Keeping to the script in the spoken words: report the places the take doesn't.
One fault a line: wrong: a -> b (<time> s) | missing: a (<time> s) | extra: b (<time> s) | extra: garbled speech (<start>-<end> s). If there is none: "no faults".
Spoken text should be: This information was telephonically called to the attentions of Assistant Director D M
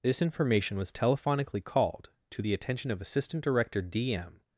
wrong: attentions -> attention (2.5 s)